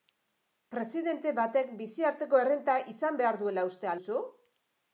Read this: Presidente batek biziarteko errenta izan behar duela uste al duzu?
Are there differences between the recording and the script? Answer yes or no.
yes